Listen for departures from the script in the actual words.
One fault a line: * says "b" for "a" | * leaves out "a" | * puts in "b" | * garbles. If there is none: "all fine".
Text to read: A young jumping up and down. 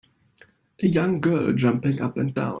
* puts in "girl"